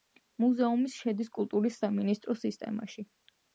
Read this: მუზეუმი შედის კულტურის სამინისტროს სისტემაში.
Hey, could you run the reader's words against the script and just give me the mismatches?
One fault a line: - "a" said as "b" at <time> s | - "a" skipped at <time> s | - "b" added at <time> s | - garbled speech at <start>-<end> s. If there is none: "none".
none